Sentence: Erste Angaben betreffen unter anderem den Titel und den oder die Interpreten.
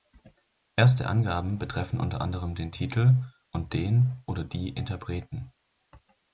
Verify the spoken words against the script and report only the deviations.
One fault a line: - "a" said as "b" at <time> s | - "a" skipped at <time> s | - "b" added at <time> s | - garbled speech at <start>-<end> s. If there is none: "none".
none